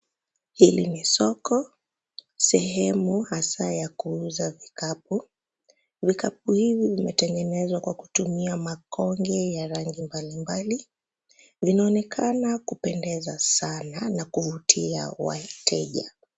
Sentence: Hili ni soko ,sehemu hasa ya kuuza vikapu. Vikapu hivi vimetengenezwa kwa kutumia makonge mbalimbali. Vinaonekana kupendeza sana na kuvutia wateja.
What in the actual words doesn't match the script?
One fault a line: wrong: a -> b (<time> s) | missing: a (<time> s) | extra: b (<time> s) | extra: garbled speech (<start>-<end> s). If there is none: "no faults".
extra: ya rangi (9.5 s)